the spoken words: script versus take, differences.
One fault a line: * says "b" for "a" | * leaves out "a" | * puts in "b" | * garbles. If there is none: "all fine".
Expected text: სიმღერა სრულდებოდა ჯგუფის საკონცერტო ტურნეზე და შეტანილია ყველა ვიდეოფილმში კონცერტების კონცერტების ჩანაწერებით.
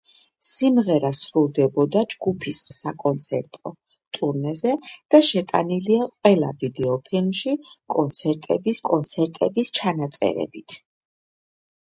all fine